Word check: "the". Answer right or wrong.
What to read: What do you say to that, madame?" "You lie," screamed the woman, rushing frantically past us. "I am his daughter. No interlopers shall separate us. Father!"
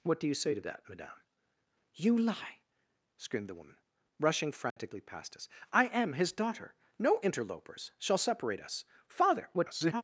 right